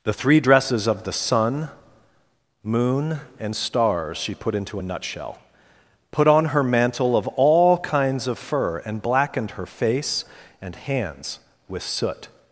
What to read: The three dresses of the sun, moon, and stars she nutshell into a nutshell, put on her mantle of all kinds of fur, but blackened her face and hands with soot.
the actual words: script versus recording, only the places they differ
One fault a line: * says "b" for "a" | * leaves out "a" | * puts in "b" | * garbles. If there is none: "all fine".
* says "put" for "nutshell"
* says "and" for "but"